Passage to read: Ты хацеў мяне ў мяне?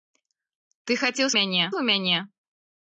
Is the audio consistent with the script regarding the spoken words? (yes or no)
yes